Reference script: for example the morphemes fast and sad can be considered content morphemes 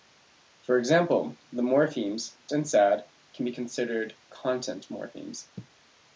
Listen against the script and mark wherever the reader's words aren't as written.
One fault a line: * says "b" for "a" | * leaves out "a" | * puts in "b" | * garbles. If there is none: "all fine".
* leaves out "fast"